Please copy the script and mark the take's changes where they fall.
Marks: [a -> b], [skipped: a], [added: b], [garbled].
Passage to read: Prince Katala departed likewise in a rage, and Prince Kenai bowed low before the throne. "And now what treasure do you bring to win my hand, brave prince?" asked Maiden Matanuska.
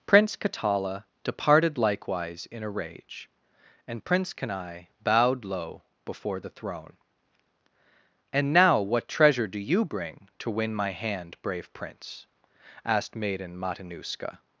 Prince Katala departed likewise in a rage, and Prince Kenai bowed low before the throne. "And now what treasure do you bring to win my hand, brave prince?" asked Maiden Matanuska.